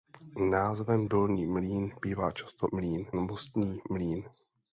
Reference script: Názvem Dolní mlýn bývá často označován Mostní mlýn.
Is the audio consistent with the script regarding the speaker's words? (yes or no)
no